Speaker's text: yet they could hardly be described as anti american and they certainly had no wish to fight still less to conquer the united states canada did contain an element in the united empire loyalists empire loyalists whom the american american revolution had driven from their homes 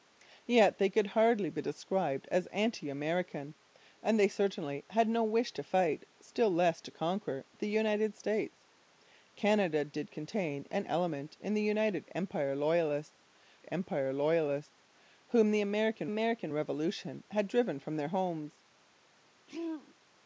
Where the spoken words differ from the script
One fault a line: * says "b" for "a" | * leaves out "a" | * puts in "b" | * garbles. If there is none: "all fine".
all fine